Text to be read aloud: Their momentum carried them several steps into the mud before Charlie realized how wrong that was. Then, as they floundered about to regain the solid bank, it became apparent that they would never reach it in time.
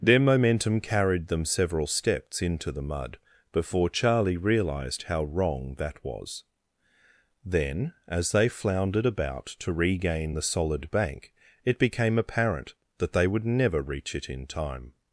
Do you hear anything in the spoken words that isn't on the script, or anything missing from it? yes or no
no